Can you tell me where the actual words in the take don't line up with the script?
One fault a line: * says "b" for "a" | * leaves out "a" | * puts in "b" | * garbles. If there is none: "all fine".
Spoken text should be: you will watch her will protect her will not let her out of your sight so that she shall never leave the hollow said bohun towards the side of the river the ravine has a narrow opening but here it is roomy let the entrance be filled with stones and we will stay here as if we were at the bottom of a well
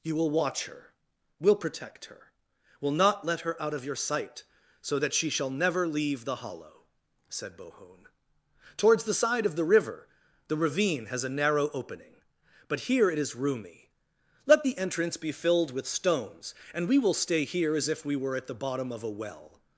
all fine